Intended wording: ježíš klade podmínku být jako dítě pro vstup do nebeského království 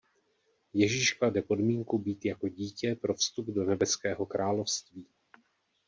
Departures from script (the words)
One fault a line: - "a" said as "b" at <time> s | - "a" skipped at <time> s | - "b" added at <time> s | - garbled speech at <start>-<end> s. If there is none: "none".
none